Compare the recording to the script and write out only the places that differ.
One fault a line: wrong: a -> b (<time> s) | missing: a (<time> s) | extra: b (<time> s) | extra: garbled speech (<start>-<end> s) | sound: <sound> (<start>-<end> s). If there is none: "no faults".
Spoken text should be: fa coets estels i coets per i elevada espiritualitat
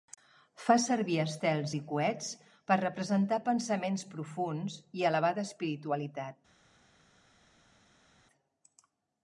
wrong: coets -> servir (0.8 s)
extra: representar pensaments profunds (2.8 s)